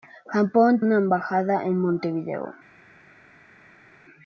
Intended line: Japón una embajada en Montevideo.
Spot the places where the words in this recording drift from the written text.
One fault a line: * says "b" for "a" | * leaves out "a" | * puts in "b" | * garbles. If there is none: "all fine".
all fine